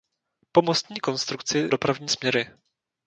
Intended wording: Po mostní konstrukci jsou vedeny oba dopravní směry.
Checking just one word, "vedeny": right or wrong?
wrong